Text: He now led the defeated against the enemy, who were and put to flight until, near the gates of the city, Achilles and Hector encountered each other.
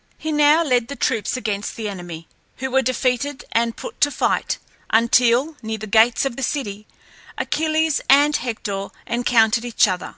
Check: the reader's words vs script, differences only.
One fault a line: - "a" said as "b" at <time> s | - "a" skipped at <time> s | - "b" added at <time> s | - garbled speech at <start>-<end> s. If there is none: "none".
- "defeated" said as "troops" at 0.9 s
- "defeated" added at 2.8 s